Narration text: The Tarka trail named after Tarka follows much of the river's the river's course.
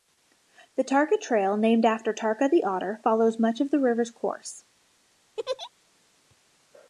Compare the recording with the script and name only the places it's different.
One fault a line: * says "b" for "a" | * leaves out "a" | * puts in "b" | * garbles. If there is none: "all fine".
* puts in "the Otter"
* leaves out "the river's"